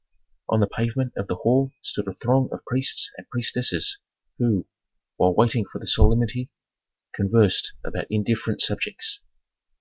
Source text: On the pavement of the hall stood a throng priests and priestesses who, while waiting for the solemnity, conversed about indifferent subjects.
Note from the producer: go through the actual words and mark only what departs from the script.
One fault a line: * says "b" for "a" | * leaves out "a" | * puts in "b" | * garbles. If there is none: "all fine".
* puts in "of"